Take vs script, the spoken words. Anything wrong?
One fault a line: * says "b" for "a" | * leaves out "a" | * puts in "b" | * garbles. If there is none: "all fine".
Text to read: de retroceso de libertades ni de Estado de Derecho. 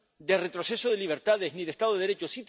all fine